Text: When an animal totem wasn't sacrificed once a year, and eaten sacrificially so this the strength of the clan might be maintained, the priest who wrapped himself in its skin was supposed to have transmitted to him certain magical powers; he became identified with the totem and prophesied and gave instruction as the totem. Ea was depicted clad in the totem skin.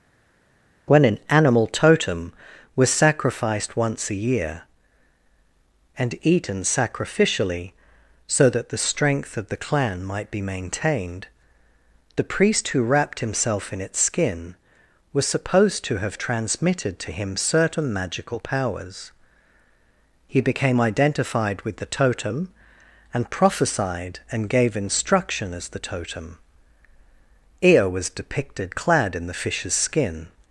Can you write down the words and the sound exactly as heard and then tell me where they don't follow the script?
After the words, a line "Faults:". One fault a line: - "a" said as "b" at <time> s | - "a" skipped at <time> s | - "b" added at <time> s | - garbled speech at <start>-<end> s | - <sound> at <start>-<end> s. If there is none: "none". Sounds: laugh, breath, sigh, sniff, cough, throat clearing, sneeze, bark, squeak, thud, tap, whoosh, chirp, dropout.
When an animal totem was sacrificed once a year, and eaten sacrificially so that the strength of the clan might be maintained, the priest who wrapped himself in its skin was supposed to have transmitted to him certain magical powers; he became identified with the totem and prophesied and gave instruction as the totem. Ea was depicted clad in the fish's skin.
Faults:
- "wasn't" said as "was" at 2.7 s
- "this" said as "that" at 8.5 s
- "totem" said as "fish's" at 29.3 s